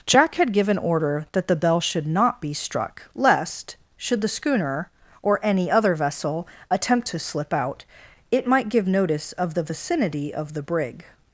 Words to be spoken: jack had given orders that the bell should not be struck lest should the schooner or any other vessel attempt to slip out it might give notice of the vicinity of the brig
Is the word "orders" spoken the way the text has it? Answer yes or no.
no